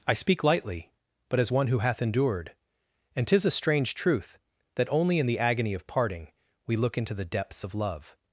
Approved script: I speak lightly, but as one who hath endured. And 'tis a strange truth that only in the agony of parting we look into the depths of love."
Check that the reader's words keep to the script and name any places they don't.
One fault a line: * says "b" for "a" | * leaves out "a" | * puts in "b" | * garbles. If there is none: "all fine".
all fine